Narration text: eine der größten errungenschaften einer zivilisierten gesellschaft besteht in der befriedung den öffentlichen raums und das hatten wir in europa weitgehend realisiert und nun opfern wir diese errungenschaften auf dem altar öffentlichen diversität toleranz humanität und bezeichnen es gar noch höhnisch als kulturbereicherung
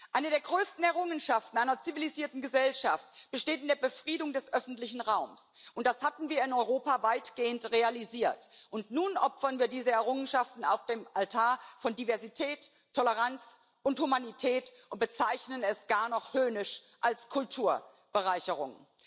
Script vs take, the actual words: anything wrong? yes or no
yes